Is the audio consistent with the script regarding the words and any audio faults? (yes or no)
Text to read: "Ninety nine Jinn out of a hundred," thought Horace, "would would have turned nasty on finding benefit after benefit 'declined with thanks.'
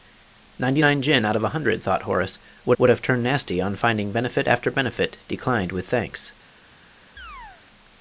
no